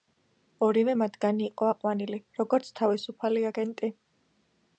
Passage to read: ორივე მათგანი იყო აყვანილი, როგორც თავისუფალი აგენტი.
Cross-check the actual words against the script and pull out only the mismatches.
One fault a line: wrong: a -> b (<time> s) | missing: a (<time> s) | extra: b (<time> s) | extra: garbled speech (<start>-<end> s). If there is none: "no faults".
no faults